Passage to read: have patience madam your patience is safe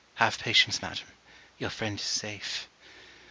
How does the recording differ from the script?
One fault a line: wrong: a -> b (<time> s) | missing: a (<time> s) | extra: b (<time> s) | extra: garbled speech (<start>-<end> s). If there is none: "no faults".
wrong: patience -> friend (1.7 s)